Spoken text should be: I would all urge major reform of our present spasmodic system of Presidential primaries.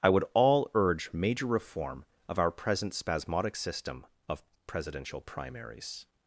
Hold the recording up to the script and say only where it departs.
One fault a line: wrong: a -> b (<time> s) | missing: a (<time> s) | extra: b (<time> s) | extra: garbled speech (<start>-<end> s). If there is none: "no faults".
no faults